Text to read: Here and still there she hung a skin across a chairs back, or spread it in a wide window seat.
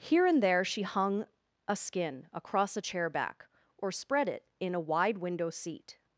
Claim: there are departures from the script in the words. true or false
true